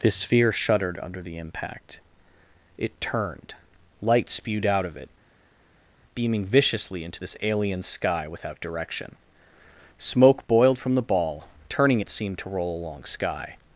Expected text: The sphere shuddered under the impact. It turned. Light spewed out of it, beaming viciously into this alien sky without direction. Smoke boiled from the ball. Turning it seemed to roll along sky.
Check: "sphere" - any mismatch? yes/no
no